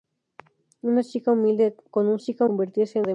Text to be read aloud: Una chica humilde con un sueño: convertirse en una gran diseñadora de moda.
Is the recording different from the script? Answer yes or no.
yes